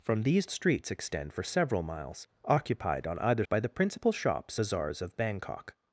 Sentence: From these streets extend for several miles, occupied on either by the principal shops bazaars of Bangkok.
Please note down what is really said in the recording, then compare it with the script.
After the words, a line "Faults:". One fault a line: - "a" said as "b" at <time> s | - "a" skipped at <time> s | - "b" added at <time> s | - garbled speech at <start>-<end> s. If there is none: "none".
From these streets extend for several miles, occupied on either by the principal shops bazaars of Bangkok.
Faults:
none